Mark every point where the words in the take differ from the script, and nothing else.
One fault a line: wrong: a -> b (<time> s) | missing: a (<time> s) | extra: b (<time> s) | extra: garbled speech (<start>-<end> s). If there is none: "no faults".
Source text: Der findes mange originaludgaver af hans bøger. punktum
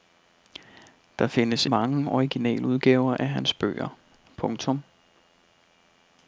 no faults